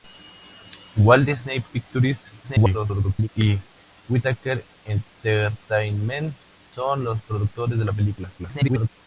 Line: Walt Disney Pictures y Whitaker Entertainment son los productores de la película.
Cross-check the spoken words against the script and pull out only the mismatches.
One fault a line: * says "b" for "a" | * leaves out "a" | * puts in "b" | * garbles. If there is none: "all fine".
* garbles
* garbles